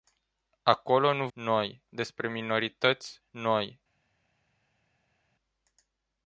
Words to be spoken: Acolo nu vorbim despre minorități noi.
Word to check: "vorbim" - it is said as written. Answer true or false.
false